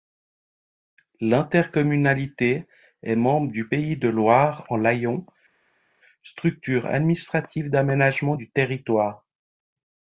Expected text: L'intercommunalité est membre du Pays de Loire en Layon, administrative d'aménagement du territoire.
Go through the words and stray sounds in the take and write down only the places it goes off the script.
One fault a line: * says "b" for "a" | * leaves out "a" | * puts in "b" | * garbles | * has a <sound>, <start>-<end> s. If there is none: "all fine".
* puts in "structure"